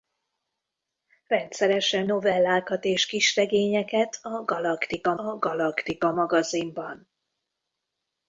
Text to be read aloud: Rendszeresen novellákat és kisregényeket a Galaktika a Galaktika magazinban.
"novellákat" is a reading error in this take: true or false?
false